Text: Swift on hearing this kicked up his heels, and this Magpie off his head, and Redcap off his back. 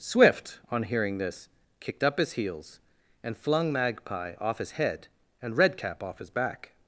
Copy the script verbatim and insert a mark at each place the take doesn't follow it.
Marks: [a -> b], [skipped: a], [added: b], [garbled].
Swift on hearing this kicked up his heels, and [this -> flung] Magpie off his head, and Redcap off his back.